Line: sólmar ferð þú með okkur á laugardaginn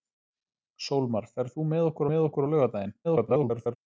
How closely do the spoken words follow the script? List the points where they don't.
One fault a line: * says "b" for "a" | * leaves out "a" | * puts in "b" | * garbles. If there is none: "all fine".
* puts in "með okkur"
* garbles